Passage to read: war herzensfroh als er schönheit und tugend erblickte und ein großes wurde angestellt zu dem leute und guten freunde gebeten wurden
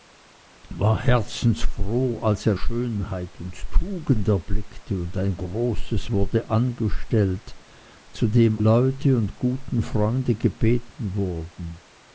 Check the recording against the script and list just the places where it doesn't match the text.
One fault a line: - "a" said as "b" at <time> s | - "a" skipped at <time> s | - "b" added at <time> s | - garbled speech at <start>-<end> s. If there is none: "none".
none